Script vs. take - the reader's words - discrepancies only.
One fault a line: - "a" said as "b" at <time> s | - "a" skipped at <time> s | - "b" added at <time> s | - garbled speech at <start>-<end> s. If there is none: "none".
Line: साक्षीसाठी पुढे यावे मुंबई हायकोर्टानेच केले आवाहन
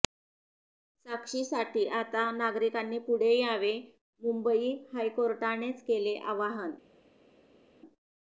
- "आता नागरिकांनी" added at 2.0 s